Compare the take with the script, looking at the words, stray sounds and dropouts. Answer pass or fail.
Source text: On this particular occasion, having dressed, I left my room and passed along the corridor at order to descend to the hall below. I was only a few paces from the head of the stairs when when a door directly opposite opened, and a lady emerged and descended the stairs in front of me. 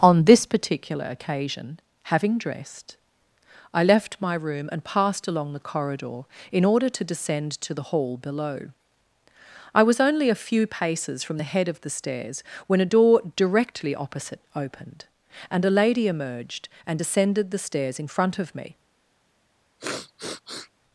fail